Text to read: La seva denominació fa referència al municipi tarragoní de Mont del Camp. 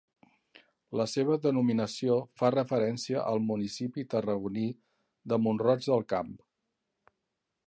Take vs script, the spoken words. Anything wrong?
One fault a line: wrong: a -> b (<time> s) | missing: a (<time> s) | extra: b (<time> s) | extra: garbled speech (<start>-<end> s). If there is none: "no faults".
extra: roig (5.7 s)